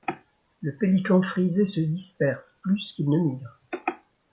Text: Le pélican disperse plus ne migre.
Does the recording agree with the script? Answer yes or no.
no